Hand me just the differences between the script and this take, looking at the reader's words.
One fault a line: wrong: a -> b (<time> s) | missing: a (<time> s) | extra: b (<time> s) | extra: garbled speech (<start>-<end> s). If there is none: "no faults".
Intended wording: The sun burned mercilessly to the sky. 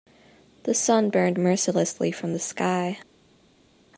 wrong: to -> from (2.1 s)